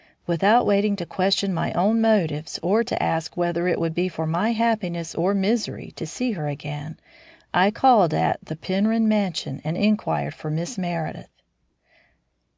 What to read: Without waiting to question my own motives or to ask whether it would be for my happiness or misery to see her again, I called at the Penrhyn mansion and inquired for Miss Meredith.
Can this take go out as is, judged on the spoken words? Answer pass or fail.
pass